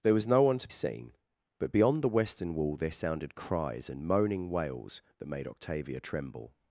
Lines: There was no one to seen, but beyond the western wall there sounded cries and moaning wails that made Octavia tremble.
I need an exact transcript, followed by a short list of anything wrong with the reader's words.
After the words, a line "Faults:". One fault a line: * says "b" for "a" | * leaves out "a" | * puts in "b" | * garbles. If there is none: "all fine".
There was no one to seen, but beyond the western wall there sounded cries and moaning wails that made Octavia tremble.
Faults:
all fine